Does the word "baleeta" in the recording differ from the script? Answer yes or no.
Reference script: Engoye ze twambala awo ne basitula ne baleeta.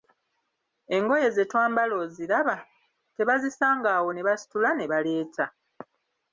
no